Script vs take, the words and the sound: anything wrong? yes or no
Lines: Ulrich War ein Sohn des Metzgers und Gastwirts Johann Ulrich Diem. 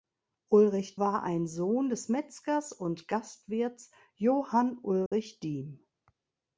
yes